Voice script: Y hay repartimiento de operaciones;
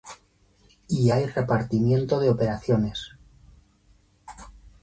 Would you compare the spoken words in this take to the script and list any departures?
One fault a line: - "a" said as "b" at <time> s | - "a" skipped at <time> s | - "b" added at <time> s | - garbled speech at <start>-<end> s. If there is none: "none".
none